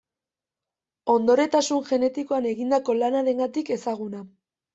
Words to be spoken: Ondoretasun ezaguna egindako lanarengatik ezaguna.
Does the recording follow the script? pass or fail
fail